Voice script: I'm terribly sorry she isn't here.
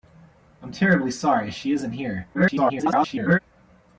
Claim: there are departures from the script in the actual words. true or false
true